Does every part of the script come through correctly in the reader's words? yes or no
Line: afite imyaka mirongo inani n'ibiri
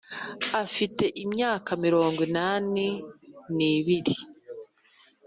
yes